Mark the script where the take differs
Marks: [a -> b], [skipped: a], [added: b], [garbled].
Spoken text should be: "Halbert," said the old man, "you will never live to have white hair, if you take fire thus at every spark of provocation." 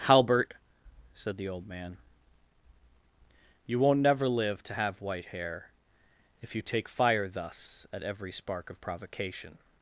"Halbert," said the old man, "you [will -> won't] never live to have white hair, if you take fire thus at every spark of provocation."